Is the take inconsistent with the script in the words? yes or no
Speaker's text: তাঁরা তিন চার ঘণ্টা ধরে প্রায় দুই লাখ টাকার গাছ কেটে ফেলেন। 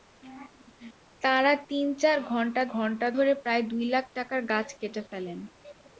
yes